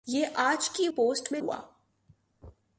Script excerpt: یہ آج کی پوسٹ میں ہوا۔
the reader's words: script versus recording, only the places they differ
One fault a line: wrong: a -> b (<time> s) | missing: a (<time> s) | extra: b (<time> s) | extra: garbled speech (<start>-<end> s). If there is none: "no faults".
no faults